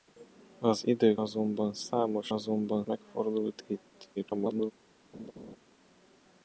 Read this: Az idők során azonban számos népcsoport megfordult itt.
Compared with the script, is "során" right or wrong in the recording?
wrong